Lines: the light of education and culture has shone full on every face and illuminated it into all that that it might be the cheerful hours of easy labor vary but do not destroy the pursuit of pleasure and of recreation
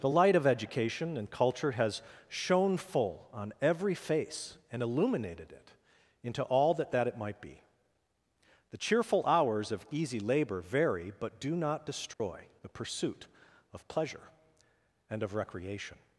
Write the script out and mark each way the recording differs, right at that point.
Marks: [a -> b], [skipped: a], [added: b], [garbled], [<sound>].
the light of education and culture has shone full on every face and illuminated it into all that that it might be the cheerful hours of easy labor vary but do not destroy [dropout] the pursuit of pleasure and of recreation